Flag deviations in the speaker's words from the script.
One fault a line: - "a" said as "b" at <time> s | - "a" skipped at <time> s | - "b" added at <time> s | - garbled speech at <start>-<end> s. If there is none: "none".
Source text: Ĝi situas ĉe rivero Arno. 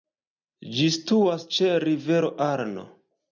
none